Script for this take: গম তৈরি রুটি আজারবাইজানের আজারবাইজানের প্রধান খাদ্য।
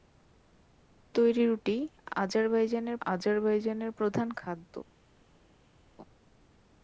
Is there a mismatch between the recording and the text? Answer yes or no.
no